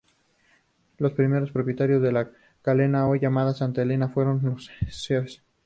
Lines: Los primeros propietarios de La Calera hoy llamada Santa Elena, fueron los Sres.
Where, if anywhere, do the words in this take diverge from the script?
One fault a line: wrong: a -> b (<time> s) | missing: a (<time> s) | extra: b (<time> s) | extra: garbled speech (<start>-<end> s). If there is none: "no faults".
no faults